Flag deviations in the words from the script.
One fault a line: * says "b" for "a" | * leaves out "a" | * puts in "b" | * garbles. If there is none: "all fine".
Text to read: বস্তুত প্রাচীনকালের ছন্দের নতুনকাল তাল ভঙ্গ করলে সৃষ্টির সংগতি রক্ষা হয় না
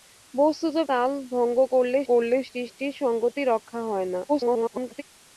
* leaves out "প্রাচীনকালের ছন্দের নতুনকাল"
* puts in "করলে"
* garbles